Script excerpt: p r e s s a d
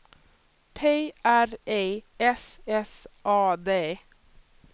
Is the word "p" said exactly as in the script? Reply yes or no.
yes